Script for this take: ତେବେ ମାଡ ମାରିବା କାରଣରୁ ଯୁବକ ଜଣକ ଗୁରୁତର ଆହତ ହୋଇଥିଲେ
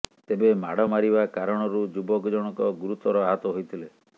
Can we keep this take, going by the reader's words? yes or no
yes